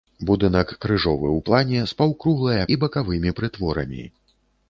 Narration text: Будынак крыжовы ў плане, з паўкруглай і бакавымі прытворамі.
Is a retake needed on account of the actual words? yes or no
no